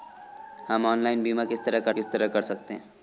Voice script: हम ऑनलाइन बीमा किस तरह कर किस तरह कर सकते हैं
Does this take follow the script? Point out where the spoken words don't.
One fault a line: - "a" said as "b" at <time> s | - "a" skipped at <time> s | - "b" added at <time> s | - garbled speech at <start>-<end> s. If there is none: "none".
none